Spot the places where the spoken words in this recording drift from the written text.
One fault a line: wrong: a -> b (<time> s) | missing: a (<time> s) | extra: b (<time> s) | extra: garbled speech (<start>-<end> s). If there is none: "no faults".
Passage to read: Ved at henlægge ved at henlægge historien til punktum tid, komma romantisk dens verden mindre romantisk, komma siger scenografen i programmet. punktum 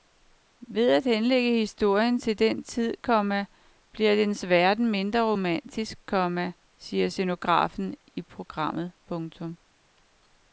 missing: ved at henlægge (1.6 s)
wrong: punktum -> den (2.4 s)
wrong: romantisk -> bliver (3.9 s)